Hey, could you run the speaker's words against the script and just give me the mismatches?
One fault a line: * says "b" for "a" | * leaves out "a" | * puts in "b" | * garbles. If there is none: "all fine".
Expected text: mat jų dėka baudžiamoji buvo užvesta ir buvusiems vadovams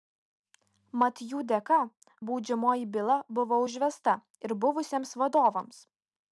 * puts in "byla"